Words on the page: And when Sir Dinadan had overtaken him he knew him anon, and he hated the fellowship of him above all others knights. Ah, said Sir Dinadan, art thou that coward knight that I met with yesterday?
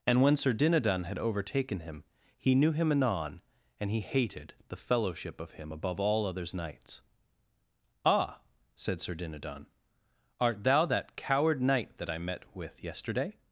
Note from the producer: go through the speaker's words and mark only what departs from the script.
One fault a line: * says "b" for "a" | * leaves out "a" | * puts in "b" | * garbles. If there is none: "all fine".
all fine